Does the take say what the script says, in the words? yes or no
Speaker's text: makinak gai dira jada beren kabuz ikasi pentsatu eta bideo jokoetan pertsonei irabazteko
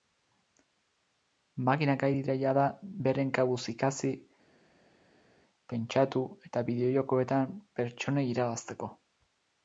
yes